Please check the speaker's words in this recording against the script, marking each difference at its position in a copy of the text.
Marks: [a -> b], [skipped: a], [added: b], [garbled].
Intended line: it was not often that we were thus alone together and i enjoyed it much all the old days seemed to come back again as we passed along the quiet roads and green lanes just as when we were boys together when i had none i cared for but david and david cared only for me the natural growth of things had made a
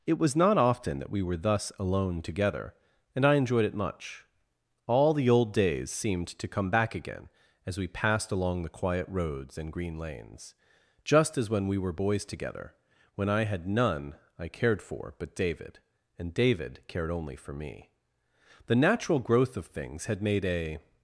it was not often that we were thus alone together and i enjoyed it much all the old days seemed to come back again as we passed along the quiet roads and green lanes just as when we were boys together when i had none i cared for but david and david cared only for me the natural growth of things had made a